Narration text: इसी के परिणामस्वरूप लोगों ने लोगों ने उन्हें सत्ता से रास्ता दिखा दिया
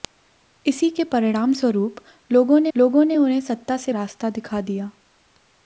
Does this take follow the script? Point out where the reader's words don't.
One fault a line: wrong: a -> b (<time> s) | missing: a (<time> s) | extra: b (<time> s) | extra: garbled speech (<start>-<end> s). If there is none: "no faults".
no faults